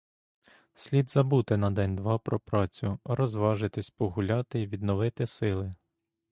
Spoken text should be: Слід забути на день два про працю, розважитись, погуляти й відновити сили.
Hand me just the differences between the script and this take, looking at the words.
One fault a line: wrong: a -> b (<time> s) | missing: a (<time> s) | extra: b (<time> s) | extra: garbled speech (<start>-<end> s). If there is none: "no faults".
no faults